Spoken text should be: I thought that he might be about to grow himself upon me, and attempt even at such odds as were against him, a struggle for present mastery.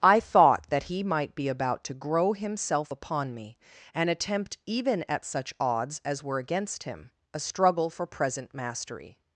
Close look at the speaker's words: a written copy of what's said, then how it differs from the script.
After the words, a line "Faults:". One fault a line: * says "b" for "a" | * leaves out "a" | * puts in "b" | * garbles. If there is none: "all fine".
I thought that he might be about to grow himself upon me, and attempt even at such odds as were against him, a struggle for present mastery.
Faults:
all fine